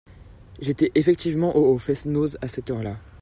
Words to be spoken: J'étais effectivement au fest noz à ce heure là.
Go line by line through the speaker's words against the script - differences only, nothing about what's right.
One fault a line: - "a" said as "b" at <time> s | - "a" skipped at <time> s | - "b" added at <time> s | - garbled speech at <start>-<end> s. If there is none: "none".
- "ce" said as "cette" at 2.5 s